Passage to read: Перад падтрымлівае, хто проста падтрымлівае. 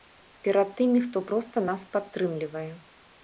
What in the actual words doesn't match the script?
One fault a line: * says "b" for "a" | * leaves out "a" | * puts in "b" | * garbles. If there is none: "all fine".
* says "тымі" for "падтрымлівае"
* puts in "нас"